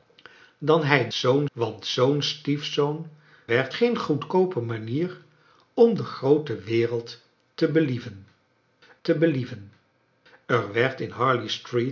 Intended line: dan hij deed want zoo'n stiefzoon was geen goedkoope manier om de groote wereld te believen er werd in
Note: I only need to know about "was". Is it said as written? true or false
false